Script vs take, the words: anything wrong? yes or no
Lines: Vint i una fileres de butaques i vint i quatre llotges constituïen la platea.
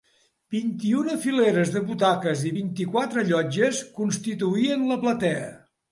no